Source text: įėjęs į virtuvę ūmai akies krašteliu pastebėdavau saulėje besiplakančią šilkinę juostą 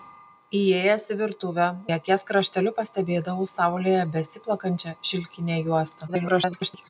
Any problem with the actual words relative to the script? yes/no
yes